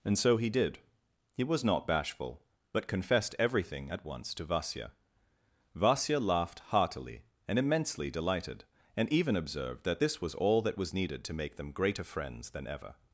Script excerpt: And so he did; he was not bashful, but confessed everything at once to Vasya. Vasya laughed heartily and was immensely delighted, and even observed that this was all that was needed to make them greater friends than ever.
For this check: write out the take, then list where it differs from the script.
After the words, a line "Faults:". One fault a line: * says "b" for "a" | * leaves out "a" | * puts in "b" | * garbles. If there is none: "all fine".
And so he did; he was not bashful, but confessed everything at once to Vasya. Vasya laughed heartily and immensely delighted, and even observed that this was all that was needed to make them greater friends than ever.
Faults:
* leaves out "was"